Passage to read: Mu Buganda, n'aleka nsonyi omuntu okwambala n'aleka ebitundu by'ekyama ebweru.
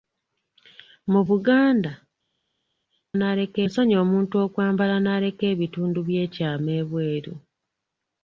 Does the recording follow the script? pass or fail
pass